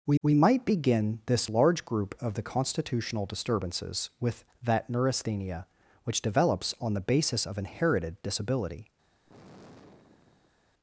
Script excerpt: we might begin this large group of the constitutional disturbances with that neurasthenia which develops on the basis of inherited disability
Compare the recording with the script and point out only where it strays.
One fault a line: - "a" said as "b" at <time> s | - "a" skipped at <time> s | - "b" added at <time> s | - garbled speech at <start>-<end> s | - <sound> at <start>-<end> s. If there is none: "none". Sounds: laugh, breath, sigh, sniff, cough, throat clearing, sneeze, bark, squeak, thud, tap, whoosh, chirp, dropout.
- "we" added at 0.2 s
- sigh at 9.2-10.6 s